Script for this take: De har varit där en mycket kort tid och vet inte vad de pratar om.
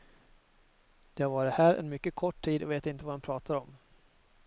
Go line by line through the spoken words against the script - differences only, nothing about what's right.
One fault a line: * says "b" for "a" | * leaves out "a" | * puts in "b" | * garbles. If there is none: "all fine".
* says "här" for "där"